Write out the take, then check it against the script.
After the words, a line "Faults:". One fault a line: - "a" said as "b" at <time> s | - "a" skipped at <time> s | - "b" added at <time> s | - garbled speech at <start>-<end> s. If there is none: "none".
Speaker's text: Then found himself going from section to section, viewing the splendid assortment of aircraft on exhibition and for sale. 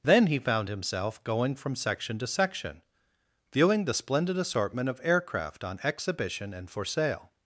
Then he found himself going from section to section, viewing the splendid assortment of aircraft on exhibition and for sale.
Faults:
- "he" added at 0.3 s